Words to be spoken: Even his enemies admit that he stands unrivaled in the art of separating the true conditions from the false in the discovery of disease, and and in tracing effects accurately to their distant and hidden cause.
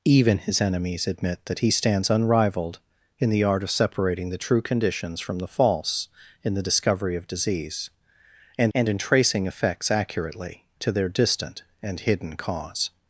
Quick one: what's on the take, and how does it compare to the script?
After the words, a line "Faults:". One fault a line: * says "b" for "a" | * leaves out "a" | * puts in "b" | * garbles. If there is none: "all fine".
Even his enemies admit that he stands unrivaled in the art of separating the true conditions from the false in the discovery of disease, and and in tracing effects accurately to their distant and hidden cause.
Faults:
all fine